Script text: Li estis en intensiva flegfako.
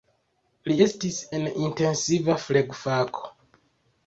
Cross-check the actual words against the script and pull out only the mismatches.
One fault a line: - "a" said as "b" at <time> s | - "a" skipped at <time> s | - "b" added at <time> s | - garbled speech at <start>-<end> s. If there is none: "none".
none